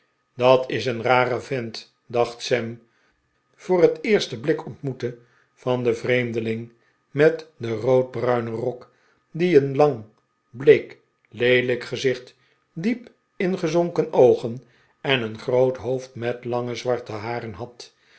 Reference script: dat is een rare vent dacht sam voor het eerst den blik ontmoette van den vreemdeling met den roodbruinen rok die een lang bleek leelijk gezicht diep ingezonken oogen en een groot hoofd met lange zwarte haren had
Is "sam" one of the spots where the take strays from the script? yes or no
no